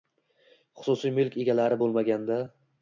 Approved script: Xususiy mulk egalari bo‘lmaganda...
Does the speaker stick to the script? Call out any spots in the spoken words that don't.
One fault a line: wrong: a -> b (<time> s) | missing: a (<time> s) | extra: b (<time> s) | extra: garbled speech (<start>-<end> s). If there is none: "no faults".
no faults